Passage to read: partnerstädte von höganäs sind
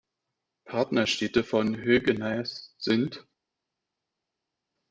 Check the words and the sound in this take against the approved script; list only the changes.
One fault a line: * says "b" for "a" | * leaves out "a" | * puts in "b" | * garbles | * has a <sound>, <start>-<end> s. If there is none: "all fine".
all fine